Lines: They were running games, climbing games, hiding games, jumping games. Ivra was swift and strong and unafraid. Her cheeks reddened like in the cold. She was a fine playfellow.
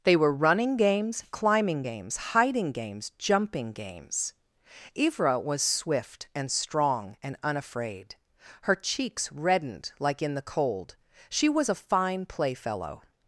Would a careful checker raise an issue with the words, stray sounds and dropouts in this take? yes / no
no